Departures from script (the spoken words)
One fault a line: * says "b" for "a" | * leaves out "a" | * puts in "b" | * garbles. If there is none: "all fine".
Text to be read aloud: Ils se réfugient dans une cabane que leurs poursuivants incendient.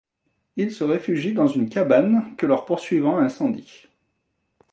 all fine